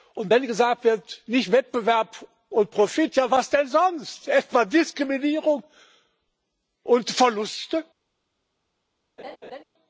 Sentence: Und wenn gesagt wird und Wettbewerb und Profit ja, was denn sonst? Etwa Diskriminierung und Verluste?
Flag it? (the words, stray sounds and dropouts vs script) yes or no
yes